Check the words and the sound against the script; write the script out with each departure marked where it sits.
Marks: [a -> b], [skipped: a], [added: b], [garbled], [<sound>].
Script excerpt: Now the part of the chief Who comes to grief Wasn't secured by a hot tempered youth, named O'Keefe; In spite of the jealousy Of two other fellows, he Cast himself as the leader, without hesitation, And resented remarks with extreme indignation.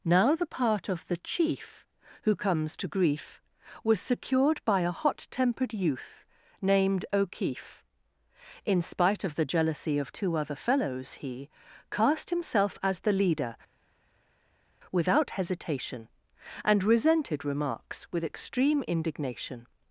Now the part of the chief Who comes to grief [Wasn't -> Was] secured by a hot tempered youth, named O'Keefe; In spite of the jealousy Of two other fellows, he Cast himself as the leader, without hesitation, And resented remarks with extreme indignation.